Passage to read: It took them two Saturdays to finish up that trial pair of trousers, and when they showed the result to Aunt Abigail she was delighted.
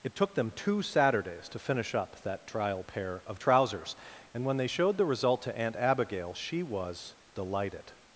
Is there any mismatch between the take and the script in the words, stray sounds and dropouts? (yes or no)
no